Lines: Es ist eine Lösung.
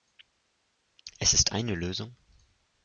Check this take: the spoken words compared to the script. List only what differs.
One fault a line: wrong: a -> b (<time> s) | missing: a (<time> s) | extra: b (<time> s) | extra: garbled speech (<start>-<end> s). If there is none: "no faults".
no faults